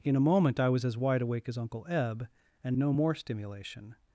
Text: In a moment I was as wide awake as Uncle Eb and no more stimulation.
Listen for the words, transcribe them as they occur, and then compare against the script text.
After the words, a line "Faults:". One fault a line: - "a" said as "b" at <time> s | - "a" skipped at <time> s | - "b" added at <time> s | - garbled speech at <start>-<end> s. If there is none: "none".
In a moment I was as wide awake as Uncle Eb and no more stimulation.
Faults:
none